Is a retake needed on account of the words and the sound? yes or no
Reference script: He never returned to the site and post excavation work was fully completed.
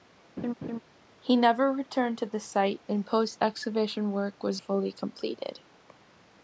yes